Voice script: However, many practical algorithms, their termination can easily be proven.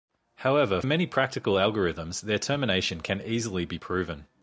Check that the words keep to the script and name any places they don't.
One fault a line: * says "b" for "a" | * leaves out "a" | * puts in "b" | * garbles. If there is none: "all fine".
all fine